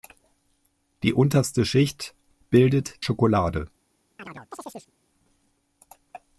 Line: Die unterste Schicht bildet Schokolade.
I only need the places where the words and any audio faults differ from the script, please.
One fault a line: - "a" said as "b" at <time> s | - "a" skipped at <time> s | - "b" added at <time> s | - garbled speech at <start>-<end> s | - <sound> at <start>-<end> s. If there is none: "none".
- chirp at 4.2-4.9 s